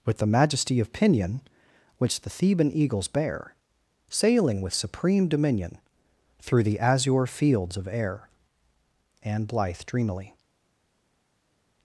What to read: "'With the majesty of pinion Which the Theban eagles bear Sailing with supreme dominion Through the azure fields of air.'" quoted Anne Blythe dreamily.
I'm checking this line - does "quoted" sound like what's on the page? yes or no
no